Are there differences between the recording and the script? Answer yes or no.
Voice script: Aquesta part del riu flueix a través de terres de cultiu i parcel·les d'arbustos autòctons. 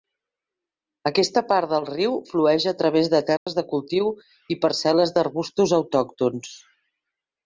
no